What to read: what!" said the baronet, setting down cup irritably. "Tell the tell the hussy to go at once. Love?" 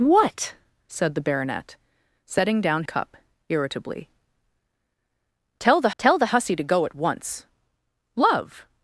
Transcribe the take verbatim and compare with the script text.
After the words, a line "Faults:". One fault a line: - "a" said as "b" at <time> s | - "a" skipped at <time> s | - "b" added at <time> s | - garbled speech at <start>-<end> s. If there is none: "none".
what!" said the baronet, setting down cup irritably. "Tell the tell the hussy to go at once. Love?"
Faults:
none